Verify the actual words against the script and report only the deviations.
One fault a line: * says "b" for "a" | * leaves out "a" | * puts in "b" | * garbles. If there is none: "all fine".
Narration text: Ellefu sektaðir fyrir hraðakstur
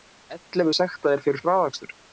all fine